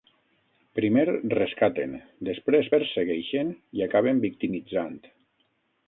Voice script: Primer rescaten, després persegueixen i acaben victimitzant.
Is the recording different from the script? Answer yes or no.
no